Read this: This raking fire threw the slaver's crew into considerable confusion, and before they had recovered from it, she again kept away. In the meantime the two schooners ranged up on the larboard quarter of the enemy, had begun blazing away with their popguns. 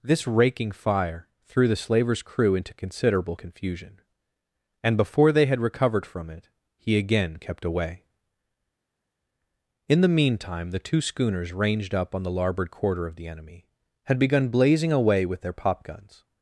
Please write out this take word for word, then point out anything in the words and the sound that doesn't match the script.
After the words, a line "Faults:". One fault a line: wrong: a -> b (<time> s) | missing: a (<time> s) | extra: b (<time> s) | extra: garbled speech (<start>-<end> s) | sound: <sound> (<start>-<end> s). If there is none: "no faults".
This raking fire threw the slaver's crew into considerable confusion, and before they had recovered from it, he again kept away. In the meantime the two schooners ranged up on the larboard quarter of the enemy, had begun blazing away with their popguns.
Faults:
wrong: she -> he (6.8 s)